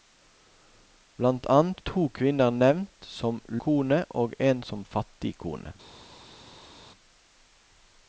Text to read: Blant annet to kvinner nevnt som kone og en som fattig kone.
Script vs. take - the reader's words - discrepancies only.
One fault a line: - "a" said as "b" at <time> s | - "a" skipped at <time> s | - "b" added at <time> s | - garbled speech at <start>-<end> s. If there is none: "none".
none